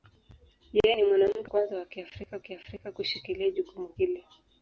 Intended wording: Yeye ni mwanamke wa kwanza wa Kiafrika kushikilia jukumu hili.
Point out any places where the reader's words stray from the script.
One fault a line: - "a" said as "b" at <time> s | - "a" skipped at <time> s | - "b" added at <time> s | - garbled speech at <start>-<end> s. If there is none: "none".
- "wa" skipped at 1.5 s
- "Kiafrika" added at 2.4 s